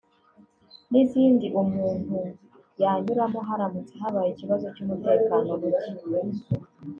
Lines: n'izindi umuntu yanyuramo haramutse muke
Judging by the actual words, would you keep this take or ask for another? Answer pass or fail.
fail